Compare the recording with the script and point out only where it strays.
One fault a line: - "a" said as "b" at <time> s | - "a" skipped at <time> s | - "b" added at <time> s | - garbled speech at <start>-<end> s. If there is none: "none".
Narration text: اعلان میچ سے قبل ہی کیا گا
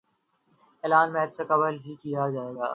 - "جائے" added at 2.3 s